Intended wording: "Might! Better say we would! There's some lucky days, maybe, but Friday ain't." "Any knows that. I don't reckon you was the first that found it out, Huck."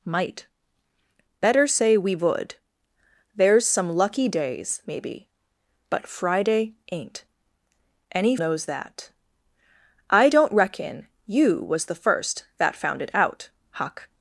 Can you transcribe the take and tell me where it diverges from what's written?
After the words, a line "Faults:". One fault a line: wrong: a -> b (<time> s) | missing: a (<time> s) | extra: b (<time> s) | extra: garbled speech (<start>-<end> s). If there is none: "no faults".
"Might! Better say we would! There's some lucky days, maybe, but Friday ain't." "Any knows that. I don't reckon you was the first that found it out, Huck."
Faults:
no faults